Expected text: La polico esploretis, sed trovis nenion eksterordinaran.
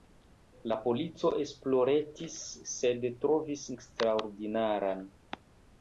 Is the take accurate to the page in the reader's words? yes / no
no